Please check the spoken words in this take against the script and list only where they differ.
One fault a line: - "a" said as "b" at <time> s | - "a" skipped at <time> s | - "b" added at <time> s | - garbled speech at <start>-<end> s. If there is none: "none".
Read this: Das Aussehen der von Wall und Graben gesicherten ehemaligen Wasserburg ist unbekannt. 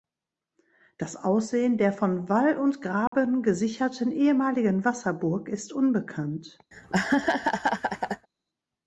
none